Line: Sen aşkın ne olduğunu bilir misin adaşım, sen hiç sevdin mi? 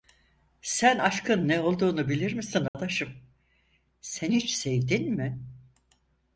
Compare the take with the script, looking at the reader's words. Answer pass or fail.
pass